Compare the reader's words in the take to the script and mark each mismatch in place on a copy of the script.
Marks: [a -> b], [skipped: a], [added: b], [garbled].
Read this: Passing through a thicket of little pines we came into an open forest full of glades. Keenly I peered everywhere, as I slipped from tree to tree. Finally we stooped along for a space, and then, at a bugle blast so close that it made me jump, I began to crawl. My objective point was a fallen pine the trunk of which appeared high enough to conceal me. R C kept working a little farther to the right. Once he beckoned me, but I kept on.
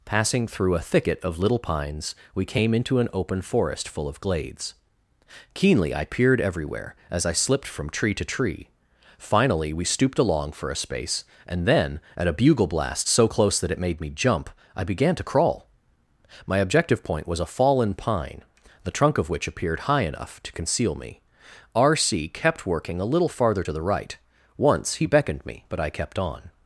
Passing through a thicket of little pines we came into an open forest full of glades. Keenly I peered everywhere, as I slipped from tree to tree. Finally we stooped along for a space, and then, at a bugle blast so close that it made me jump, I began to crawl. My objective point was a fallen pine the trunk of which appeared high enough to conceal me. R C kept working a little farther to the right. Once he beckoned me, but I kept on.